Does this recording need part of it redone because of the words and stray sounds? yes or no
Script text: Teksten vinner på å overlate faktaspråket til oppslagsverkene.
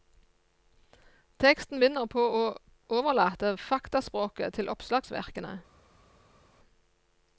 no